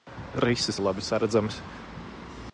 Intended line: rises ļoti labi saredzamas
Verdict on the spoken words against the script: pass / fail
fail